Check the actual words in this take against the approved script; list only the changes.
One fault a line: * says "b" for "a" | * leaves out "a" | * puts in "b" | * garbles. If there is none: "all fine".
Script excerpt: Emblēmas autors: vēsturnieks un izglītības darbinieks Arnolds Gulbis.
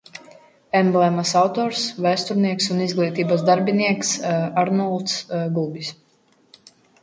all fine